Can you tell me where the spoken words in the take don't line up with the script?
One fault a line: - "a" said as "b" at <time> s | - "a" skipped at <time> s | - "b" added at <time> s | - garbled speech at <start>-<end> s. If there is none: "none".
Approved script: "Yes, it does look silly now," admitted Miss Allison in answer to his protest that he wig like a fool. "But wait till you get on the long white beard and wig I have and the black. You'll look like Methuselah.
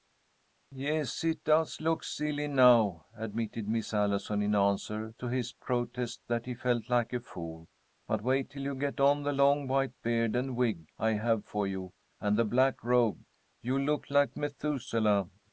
- "wig" said as "felt" at 6.5 s
- "for you" added at 11.4 s
- "robe" added at 12.8 s